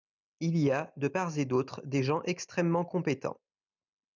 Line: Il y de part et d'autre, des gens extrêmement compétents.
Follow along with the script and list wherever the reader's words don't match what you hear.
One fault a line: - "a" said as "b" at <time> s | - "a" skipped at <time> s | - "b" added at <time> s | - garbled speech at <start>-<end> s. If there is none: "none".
- "a" added at 0.7 s